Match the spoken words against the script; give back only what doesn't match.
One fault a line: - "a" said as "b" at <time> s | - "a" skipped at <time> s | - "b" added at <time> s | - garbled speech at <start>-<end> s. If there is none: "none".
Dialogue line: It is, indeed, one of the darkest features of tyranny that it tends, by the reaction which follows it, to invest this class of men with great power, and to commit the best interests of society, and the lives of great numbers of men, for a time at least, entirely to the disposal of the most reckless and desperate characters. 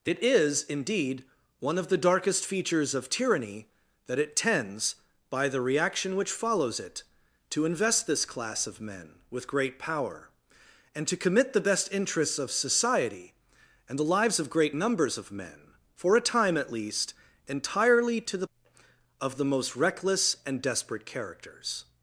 - "disposal" skipped at 18.5 s